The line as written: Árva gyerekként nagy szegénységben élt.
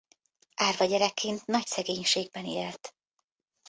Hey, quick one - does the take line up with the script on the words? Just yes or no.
yes